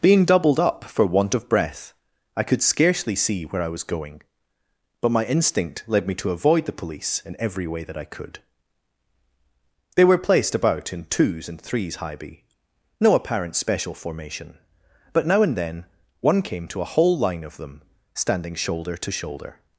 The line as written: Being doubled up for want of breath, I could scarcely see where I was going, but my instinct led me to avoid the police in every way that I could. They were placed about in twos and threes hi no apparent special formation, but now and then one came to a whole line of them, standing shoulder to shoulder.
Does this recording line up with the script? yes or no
no